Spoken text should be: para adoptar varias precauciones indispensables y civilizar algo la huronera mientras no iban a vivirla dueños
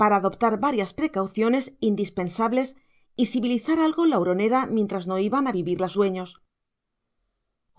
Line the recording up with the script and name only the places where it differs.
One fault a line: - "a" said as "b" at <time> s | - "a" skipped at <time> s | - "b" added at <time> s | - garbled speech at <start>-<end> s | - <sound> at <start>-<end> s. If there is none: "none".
none